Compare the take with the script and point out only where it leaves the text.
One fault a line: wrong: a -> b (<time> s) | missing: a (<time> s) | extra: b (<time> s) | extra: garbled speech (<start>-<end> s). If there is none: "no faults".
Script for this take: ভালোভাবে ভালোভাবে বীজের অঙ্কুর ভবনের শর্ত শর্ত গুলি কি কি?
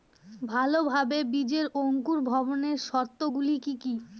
missing: ভালোভাবে (1.2 s)
missing: শর্ত (3.2 s)